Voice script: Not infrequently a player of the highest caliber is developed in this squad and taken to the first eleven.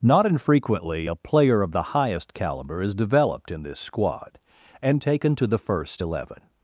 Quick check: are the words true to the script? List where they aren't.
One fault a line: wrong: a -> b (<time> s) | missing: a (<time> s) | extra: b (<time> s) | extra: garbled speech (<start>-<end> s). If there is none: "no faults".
no faults